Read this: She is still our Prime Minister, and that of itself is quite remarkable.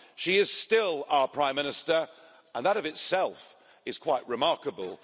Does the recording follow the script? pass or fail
pass